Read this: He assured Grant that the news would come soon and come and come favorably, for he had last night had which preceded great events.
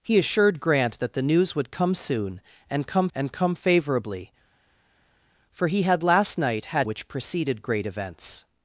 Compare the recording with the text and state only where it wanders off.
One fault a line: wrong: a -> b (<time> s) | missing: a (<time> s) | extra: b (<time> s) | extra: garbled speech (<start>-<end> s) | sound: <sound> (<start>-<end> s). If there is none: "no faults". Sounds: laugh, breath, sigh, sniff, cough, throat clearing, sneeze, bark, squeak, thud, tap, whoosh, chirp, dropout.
no faults